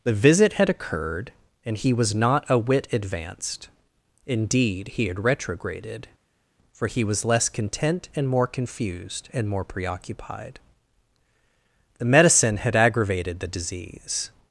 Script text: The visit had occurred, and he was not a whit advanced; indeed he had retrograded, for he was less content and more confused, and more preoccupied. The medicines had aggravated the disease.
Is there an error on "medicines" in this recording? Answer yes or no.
yes